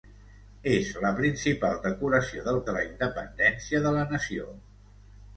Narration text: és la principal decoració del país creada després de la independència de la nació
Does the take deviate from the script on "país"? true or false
true